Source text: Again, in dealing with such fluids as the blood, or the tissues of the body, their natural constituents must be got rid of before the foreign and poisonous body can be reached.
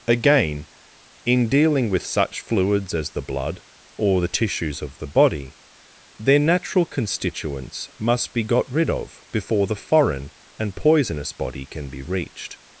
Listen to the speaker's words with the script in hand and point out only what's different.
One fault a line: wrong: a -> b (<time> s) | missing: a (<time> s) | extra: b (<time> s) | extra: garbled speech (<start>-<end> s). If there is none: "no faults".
no faults